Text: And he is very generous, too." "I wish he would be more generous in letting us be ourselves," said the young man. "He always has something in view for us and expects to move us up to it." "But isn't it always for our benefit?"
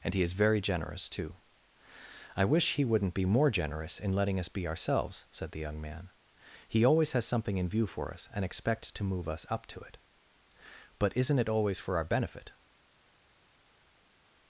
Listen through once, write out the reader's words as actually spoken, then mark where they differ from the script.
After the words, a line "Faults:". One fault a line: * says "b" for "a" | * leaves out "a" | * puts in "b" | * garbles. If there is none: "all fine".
And he is very generous, too." "I wish he wouldn't be more generous in letting us be ourselves," said the young man. "He always has something in view for us and expects to move us up to it." "But isn't it always for our benefit?"
Faults:
* says "wouldn't" for "would"